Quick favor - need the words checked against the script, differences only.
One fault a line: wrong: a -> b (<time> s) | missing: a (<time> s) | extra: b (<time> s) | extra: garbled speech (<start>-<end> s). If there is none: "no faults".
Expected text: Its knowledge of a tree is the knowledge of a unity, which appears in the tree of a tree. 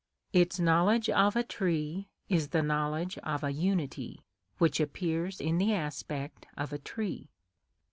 wrong: tree -> aspect (5.7 s)